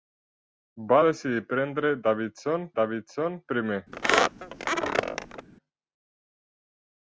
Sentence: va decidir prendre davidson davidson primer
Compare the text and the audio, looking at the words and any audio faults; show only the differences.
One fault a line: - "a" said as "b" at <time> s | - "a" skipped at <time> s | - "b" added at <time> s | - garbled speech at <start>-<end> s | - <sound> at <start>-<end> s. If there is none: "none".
- squeak at 3.9-5.5 s